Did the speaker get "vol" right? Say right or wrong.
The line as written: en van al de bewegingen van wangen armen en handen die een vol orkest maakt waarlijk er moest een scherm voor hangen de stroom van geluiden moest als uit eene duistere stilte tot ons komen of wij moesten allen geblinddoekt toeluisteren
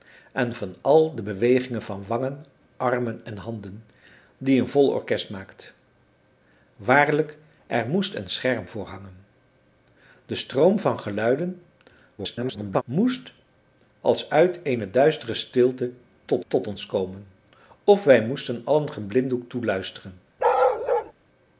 right